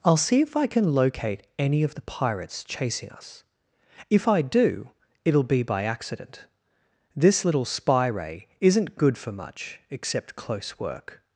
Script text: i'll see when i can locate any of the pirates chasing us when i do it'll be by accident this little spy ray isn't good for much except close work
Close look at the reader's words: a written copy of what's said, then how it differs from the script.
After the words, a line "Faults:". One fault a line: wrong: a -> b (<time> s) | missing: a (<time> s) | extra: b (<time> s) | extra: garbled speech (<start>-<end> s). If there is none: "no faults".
i'll see if i can locate any of the pirates chasing us if i do it'll be by accident this little spy ray isn't good for much except close work
Faults:
wrong: when -> if (0.4 s)
wrong: when -> if (4.1 s)